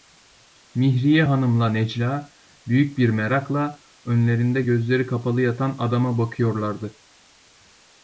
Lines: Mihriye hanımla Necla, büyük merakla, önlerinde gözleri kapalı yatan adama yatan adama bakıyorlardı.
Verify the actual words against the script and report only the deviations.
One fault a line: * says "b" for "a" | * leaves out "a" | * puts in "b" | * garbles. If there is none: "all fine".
* puts in "bir"
* leaves out "yatan adama"